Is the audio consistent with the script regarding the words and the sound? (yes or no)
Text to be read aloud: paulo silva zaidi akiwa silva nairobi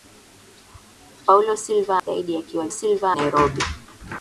no